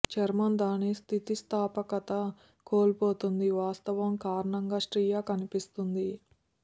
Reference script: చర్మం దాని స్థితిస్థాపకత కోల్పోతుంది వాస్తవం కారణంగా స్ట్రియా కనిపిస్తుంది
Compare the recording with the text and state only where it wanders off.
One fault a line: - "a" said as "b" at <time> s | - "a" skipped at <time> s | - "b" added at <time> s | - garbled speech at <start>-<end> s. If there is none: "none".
none